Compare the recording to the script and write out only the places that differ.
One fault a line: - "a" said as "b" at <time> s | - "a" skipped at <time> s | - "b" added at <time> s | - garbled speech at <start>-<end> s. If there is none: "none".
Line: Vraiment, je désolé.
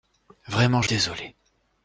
none